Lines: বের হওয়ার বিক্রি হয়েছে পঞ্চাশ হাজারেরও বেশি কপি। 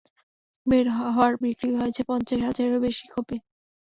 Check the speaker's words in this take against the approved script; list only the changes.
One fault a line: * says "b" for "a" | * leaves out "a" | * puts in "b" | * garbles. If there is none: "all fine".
all fine